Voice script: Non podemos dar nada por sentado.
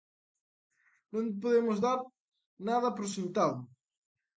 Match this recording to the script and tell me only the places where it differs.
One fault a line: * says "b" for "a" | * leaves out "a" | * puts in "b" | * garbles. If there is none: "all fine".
all fine